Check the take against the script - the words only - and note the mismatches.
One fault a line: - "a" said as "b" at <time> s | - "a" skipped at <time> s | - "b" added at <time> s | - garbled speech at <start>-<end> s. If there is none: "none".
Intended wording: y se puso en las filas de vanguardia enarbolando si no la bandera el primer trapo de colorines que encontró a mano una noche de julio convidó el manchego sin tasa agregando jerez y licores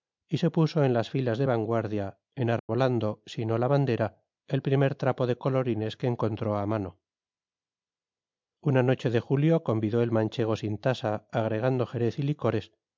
none